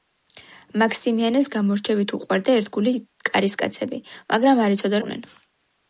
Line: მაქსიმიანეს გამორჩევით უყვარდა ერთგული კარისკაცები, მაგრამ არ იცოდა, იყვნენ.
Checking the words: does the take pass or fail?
pass